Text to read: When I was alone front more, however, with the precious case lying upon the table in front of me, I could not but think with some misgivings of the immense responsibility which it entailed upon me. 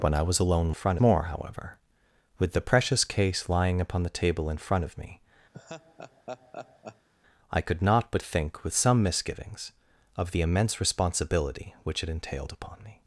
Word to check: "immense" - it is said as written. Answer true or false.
true